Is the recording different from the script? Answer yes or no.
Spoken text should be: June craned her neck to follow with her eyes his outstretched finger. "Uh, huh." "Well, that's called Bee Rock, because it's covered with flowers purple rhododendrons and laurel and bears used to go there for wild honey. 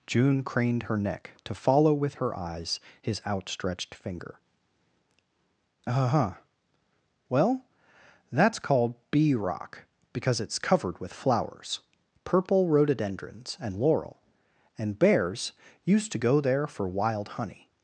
no